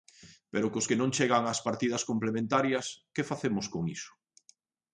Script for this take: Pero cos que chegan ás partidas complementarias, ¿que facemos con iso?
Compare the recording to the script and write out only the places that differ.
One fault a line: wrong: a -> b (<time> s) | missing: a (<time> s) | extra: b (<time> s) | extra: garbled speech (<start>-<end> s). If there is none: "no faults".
extra: non (1.0 s)